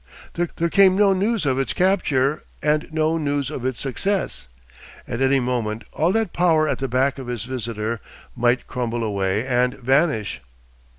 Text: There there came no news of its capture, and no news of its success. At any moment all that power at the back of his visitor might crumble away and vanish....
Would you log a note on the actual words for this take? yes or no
no